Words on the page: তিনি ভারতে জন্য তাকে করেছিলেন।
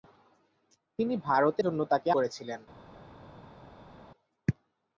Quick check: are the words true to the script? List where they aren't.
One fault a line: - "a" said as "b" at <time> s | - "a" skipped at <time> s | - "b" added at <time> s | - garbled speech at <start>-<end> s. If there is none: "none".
none